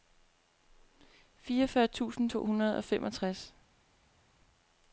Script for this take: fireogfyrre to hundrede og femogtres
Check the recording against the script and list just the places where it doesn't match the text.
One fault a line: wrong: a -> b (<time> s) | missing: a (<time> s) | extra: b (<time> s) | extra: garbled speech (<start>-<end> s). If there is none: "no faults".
extra: tusind (1.9 s)